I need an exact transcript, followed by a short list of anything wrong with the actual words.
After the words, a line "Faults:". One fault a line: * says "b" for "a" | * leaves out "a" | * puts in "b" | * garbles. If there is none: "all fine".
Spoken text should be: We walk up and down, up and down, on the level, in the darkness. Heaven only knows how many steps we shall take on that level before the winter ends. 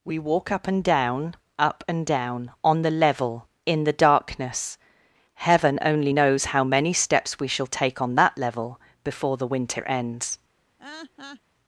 We walk up and down, up and down, on the level, in the darkness. Heaven only knows how many steps we shall take on that level before the winter ends.
Faults:
all fine